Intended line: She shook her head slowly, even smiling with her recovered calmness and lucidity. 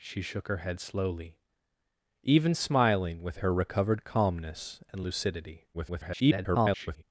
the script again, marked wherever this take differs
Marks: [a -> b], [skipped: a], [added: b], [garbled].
She shook her head slowly, even smiling with her recovered calmness and lucidity. [garbled]